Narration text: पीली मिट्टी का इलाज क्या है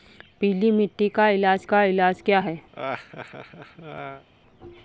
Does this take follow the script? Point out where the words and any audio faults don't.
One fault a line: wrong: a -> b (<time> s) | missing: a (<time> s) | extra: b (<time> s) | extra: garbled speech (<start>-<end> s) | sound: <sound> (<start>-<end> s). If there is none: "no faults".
extra: का इलाज (1.6 s)
sound: laugh (2.7-4.3 s)